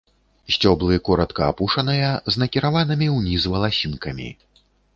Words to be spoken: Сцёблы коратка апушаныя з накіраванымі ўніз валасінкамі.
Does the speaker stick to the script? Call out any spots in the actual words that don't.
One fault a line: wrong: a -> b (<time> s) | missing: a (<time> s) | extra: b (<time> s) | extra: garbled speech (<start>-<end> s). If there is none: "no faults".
no faults